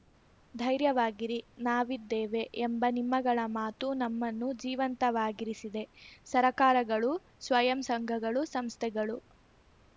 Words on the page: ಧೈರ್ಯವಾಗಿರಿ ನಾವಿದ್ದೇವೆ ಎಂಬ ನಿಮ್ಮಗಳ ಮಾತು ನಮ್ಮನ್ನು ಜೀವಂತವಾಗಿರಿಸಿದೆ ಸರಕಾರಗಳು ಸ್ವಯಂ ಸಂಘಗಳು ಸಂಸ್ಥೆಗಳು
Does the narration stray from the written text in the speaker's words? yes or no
no